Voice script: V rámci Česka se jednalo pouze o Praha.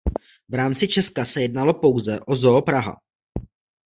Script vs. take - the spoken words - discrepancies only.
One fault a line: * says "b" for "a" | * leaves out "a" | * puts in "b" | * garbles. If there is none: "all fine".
* puts in "Zoo"